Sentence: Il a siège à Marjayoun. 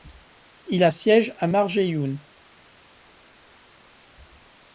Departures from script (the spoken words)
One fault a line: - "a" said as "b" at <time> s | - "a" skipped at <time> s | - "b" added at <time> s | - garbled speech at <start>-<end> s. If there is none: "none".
none